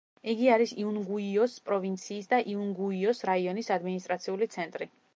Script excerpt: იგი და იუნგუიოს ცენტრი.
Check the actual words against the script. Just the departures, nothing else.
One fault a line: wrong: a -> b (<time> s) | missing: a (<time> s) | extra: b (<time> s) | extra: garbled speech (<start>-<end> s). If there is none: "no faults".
extra: არის იუნგუიოს პროვინციის (0.5 s)
extra: რაიონის ადმინისტრაციული (3.3 s)